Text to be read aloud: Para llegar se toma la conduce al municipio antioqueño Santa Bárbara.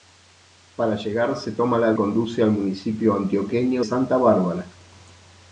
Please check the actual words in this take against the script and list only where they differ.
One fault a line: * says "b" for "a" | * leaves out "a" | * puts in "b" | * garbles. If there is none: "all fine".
all fine